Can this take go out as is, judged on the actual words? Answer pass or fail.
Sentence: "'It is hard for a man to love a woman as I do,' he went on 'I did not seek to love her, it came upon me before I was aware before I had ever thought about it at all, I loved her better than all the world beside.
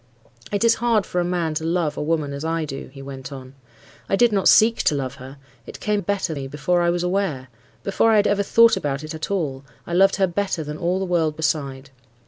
fail